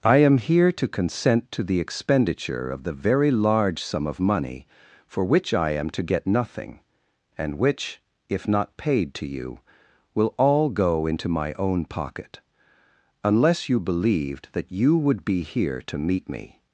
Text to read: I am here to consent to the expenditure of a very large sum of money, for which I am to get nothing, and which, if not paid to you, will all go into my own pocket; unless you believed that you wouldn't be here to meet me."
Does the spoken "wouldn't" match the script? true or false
false